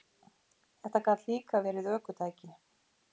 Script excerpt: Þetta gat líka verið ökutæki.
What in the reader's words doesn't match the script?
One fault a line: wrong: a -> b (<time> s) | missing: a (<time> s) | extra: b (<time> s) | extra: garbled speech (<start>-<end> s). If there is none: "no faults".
no faults